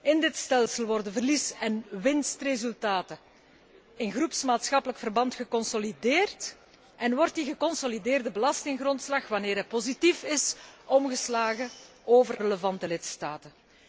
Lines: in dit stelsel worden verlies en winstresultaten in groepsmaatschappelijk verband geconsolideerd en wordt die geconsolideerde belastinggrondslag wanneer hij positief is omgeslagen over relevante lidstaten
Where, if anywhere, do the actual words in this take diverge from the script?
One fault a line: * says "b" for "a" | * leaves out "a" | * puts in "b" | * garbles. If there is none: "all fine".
all fine